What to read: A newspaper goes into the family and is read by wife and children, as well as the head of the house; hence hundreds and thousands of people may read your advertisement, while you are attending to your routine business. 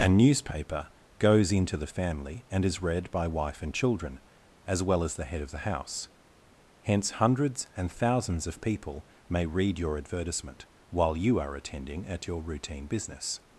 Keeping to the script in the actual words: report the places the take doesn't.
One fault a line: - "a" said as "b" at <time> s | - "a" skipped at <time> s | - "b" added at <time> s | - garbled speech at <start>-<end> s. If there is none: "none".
- "to" said as "at" at 12.1 s